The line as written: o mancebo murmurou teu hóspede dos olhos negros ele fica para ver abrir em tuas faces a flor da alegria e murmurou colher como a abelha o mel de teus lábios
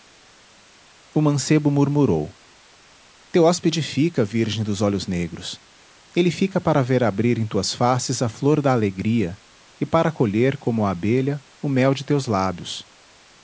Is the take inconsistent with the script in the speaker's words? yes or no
yes